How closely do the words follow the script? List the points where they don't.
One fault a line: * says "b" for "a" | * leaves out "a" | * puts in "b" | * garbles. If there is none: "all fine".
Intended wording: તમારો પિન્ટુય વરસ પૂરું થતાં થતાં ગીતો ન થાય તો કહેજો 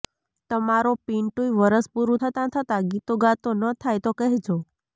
* puts in "ગાતો"